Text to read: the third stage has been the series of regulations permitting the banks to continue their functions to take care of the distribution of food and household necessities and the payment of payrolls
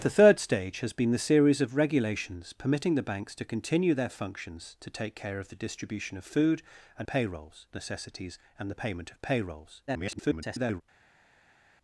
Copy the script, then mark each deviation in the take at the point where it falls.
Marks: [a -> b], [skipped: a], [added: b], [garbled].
the third stage has been the series of regulations permitting the banks to continue their functions to take care of the distribution of food and [household -> payrolls] necessities and the payment of payrolls [garbled]